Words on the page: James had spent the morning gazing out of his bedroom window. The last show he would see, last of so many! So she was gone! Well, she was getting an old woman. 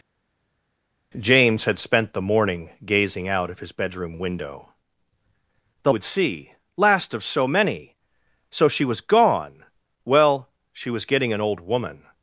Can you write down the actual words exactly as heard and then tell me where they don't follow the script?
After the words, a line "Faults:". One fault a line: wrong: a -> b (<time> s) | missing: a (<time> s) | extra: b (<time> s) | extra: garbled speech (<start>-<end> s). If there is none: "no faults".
James had spent the morning gazing out of his bedroom window. The would see, last of so many! So she was gone! Well, she was getting an old woman.
Faults:
missing: last show he (5.9 s)